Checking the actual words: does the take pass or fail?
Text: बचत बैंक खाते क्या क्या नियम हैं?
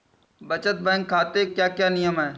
pass